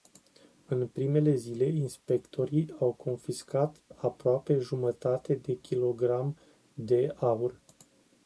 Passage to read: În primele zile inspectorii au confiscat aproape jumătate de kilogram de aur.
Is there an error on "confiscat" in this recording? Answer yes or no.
no